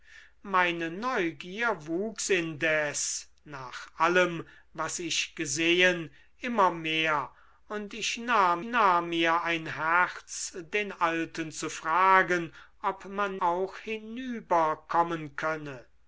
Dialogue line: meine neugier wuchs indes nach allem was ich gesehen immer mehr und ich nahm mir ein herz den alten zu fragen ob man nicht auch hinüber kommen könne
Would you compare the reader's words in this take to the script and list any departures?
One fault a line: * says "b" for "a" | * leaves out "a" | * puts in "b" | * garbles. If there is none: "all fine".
* puts in "nahm"
* leaves out "nicht"